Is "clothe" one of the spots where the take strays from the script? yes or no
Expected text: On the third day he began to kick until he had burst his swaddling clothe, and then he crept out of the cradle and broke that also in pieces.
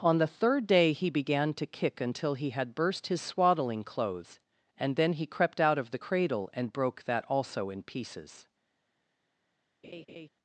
yes